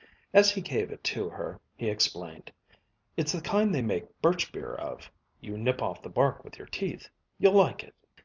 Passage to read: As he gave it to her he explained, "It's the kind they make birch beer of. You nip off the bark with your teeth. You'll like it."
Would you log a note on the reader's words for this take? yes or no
no